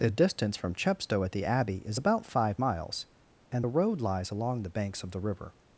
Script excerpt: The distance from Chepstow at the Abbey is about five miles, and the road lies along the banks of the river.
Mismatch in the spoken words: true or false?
false